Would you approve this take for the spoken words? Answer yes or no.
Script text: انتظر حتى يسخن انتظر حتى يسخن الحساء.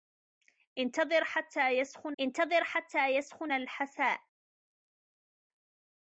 yes